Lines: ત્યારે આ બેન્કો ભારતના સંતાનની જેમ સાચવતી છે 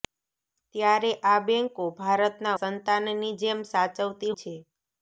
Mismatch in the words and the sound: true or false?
false